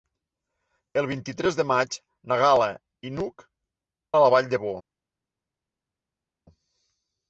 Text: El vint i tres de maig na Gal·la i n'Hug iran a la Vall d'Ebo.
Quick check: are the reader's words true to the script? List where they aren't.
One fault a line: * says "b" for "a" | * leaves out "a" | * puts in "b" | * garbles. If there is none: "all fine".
* leaves out "iran"